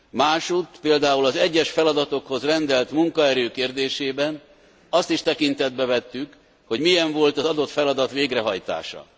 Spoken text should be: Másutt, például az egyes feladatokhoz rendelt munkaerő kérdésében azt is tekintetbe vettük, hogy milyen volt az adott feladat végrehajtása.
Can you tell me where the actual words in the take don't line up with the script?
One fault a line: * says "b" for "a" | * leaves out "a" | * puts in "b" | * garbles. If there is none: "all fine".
all fine